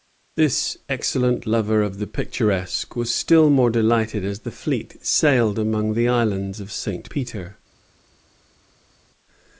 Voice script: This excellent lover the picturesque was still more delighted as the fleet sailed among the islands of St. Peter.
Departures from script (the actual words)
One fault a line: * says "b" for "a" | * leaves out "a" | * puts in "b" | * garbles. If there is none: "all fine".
* puts in "of"